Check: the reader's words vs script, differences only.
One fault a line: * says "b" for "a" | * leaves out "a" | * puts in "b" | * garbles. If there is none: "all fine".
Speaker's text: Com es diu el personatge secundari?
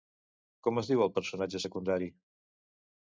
all fine